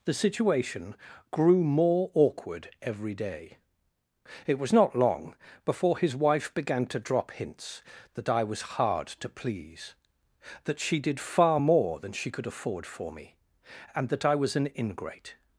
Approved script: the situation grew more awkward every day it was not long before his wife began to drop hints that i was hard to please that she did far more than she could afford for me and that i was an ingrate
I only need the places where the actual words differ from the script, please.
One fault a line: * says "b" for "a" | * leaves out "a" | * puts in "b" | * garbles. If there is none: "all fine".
all fine